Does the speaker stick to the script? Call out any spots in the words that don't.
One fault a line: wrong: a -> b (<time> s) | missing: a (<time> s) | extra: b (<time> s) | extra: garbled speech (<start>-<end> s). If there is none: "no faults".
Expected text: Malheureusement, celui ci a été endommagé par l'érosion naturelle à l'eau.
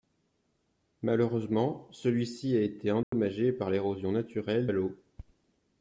no faults